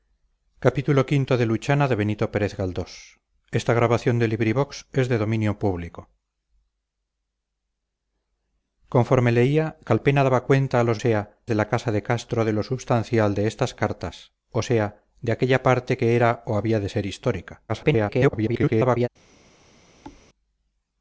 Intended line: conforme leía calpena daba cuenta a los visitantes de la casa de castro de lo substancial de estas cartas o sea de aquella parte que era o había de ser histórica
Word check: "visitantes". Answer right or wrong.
wrong